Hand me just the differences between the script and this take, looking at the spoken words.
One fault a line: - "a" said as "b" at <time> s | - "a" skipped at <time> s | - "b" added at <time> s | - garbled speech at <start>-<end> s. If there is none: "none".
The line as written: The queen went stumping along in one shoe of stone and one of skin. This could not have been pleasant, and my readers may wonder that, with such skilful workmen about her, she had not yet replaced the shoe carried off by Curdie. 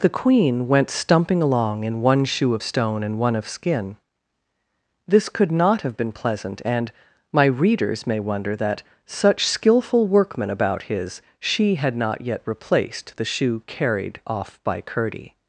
- "with" skipped at 8.8 s
- "her" said as "his" at 10.8 s